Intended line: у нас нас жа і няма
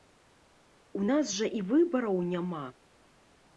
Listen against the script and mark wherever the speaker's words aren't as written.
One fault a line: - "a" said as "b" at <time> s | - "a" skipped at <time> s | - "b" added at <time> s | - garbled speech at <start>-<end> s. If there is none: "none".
- "нас" skipped at 1.3 s
- "выбараў" added at 1.7 s